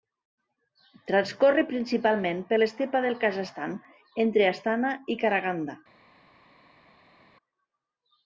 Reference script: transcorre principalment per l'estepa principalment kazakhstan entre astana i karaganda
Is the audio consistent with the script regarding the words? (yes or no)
no